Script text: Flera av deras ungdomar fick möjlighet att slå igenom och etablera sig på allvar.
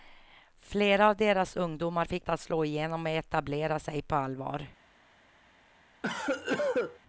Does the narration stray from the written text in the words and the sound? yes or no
yes